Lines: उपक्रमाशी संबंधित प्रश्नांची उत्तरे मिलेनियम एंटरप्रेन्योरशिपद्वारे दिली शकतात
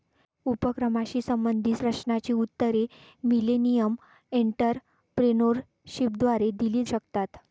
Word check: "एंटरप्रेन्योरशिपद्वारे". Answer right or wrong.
right